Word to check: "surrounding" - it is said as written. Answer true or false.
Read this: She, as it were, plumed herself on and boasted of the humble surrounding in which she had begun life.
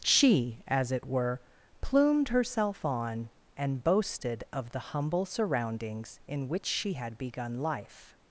false